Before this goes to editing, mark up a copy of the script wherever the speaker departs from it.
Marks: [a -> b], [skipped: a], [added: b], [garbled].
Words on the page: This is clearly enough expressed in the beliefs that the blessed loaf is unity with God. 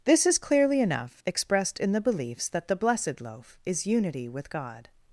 This is clearly enough expressed in the beliefs that the blessed loaf is unity with God.